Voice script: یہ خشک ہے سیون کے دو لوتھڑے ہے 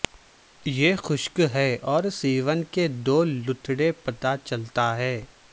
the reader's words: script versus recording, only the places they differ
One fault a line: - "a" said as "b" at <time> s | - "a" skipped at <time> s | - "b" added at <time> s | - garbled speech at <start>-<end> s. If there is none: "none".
- "اور" added at 1.9 s
- "پتہ چلتا" added at 3.9 s